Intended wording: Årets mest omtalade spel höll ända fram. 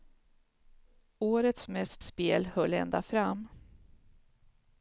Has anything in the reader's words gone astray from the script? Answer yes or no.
yes